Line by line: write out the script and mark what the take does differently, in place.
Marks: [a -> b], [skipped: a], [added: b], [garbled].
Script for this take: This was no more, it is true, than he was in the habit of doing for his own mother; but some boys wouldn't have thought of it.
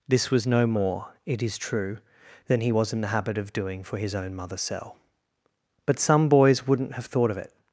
This was no more, it is true, than he was in the habit of doing for his own mother; [added: cell] but some boys wouldn't have thought of it.